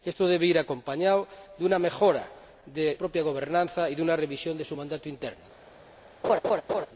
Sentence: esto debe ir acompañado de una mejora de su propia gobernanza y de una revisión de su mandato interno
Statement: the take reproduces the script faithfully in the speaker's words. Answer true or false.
false